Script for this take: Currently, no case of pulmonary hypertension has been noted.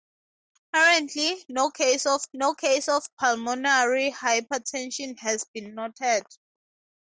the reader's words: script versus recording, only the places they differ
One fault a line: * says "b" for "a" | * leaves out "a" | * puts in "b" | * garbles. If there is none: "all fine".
* puts in "no case of"